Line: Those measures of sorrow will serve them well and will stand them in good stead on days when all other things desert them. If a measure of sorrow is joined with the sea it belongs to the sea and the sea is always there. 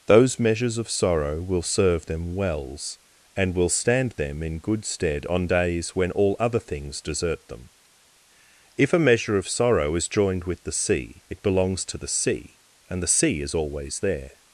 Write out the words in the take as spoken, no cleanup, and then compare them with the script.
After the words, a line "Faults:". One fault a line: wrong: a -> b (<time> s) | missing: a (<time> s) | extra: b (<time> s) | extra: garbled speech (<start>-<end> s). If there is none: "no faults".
Those measures of sorrow will serve them wells and will stand them in good stead on days when all other things desert them. If a measure of sorrow is joined with the sea it belongs to the sea and the sea is always there.
Faults:
wrong: well -> wells (2.4 s)